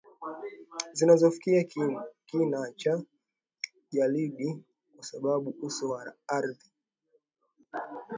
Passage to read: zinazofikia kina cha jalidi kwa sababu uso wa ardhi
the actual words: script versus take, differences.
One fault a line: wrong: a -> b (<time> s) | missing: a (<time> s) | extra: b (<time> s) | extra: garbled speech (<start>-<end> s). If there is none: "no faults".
no faults